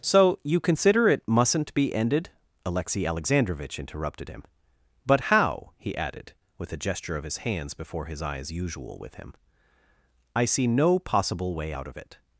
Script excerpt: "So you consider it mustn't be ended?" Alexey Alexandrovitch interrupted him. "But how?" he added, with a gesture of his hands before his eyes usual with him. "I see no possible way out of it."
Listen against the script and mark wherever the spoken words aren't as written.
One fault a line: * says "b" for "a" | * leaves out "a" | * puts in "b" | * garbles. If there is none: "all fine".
all fine